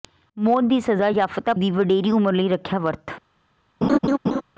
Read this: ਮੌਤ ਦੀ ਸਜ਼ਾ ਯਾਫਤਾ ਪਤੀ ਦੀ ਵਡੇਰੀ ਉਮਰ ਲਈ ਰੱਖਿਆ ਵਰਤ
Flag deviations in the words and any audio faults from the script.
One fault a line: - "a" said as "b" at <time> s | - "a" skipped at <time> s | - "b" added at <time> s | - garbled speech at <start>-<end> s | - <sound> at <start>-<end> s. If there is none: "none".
- "ਪਤੀ" skipped at 1.5 s
- laugh at 3.8-4.4 s